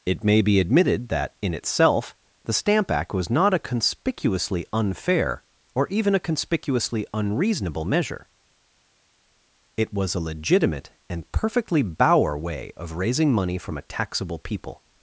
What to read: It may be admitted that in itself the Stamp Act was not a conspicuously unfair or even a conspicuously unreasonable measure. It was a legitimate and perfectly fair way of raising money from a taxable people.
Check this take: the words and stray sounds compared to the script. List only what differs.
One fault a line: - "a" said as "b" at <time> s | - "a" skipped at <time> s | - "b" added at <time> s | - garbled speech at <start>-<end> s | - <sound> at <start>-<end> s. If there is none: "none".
- "fair" said as "bauer" at 11.8 s